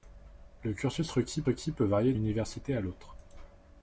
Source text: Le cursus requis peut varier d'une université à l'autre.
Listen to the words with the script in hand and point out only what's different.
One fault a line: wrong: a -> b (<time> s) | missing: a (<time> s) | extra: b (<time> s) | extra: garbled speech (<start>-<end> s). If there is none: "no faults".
extra: requis (1.4 s)
missing: d'une (2.1 s)